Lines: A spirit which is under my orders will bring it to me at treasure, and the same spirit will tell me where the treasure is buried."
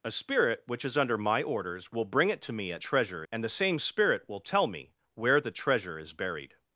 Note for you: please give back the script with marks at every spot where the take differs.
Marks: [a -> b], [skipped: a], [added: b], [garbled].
A spirit which is under my orders will bring it to me at treasure, and the same spirit will tell me where the treasure is buried."